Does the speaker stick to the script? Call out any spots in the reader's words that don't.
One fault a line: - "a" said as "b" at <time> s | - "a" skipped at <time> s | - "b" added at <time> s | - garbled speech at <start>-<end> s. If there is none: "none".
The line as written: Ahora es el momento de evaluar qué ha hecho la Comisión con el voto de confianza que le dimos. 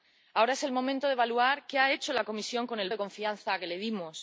- "voto" skipped at 2.9 s